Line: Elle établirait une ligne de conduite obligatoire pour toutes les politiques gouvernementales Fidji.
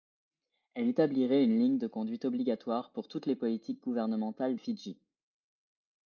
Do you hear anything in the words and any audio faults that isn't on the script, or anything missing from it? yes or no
no